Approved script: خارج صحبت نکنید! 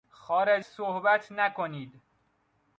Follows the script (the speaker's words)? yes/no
yes